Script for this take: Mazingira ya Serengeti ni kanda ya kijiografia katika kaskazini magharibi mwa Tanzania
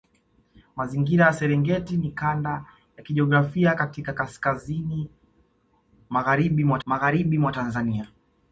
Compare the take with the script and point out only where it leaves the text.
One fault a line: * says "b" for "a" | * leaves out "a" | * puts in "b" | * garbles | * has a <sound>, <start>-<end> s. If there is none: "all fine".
* puts in "magharibi mwa"